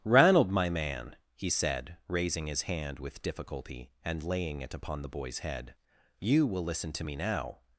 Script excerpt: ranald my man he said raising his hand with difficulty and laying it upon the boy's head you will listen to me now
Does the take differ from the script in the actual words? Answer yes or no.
no